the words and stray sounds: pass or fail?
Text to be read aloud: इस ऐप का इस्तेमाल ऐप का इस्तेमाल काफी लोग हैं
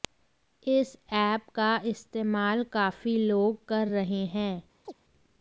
fail